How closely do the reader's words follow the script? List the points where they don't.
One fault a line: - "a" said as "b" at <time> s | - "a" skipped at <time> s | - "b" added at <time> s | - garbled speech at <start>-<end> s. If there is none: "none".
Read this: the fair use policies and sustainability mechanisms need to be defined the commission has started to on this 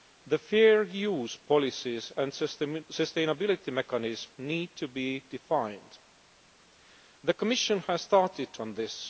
none